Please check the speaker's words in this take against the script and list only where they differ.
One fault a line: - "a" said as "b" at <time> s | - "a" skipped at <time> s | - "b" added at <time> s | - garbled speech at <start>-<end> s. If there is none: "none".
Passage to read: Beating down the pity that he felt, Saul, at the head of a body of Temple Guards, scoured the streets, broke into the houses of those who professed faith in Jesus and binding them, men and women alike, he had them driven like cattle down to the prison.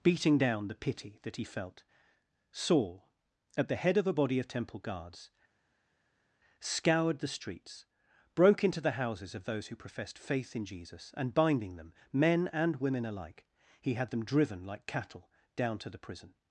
none